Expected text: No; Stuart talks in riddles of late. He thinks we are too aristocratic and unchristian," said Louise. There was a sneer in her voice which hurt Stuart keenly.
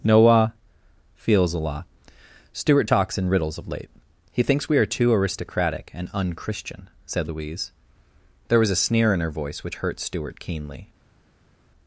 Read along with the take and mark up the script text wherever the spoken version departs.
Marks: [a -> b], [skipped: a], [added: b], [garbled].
[No; -> Noah feels a lot] Stuart talks in riddles of late. He thinks we are too aristocratic and unchristian," said Louise. There was a sneer in her voice which hurt Stuart keenly.